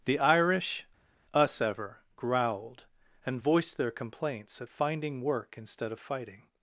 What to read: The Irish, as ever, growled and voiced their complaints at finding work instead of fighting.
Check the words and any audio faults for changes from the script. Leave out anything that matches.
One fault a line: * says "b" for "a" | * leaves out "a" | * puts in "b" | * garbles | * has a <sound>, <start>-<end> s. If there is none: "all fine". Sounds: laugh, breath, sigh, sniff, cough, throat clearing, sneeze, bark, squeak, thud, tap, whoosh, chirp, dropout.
* says "us" for "as"